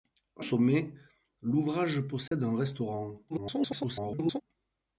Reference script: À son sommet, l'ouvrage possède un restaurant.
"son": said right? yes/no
no